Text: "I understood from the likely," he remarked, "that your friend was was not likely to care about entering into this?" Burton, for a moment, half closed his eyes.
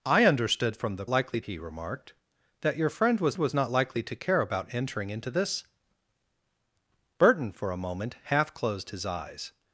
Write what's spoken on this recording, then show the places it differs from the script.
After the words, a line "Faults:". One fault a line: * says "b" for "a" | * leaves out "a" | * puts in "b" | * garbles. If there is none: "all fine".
"I understood from the likely," he remarked, "that your friend was was not likely to care about entering into this?" Burton, for a moment, half closed his eyes.
Faults:
all fine